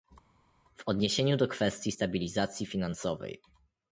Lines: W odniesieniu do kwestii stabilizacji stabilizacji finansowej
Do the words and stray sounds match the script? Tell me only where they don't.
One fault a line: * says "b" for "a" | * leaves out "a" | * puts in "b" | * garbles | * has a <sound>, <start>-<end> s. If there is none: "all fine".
* leaves out "stabilizacji"